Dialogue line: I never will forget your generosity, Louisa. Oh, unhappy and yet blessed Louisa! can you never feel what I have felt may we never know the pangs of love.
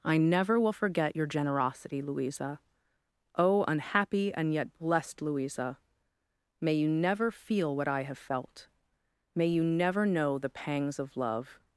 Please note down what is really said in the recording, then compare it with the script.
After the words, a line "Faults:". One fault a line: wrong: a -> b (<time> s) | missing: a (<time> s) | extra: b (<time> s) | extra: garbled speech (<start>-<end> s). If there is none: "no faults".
I never will forget your generosity, Louisa. Oh, unhappy and yet blessed Louisa! may you never feel what I have felt may you never know the pangs of love.
Faults:
wrong: can -> may (6.6 s)
wrong: we -> you (9.5 s)